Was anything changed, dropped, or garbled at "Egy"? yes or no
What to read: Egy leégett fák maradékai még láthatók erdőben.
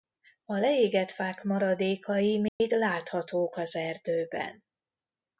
yes